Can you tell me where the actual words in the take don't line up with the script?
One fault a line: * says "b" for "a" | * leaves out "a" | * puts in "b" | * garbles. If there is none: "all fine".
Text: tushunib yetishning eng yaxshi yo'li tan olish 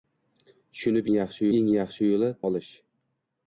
* says "yaxshi" for "yetishning"
* leaves out "tan"